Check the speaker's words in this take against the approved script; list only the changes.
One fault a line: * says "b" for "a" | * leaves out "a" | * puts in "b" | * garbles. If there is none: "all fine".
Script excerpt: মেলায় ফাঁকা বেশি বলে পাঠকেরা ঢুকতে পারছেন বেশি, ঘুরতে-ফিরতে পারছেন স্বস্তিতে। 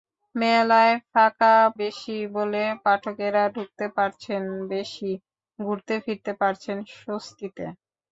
all fine